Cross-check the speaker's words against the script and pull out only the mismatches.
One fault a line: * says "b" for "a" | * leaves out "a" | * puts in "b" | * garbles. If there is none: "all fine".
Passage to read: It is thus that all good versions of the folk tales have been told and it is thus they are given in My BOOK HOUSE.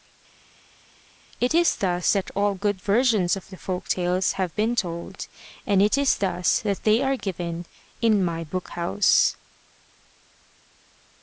* puts in "that"